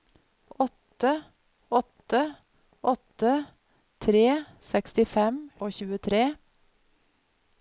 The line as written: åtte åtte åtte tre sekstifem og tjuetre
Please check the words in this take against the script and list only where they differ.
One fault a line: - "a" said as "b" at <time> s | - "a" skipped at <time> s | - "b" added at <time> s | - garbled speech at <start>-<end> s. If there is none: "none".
none